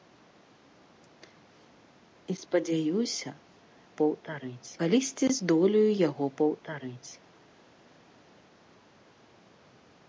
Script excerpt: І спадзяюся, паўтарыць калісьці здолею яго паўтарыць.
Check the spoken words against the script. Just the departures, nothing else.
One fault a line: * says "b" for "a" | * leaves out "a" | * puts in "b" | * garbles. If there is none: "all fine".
all fine